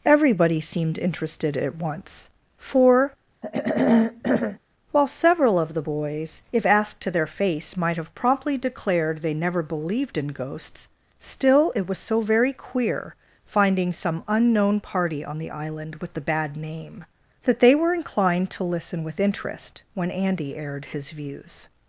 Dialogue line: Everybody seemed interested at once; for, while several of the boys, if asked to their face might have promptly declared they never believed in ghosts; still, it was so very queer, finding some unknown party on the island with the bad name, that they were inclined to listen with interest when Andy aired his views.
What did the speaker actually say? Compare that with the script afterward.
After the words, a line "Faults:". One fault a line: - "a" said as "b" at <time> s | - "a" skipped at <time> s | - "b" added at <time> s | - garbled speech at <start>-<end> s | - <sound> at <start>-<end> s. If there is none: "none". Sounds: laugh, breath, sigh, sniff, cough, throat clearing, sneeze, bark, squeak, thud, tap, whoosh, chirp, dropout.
Everybody seemed interested at once; for, while several of the boys, if asked to their face might have promptly declared they never believed in ghosts; still, it was so very queer, finding some unknown party on the island with the bad name, that they were inclined to listen with interest when Andy aired his views.
Faults:
- throat clearing at 3.4-4.6 s